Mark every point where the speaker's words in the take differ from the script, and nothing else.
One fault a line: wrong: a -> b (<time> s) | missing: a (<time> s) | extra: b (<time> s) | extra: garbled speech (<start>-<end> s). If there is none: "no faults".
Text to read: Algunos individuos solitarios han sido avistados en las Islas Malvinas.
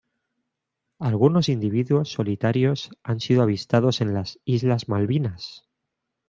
no faults